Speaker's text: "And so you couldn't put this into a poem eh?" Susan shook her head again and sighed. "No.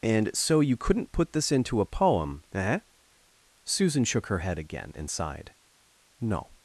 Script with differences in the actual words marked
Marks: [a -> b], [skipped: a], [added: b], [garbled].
"And so you couldn't put this into a poem eh?" Susan shook her head again and sighed. "No.